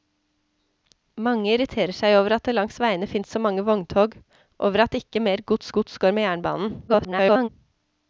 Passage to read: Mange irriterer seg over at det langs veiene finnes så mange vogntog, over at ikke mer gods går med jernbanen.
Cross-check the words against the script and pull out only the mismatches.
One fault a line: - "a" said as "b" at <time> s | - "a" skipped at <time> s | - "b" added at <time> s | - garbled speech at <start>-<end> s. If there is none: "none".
- "gods" added at 5.8 s
- garbled speech at 6.9-7.5 s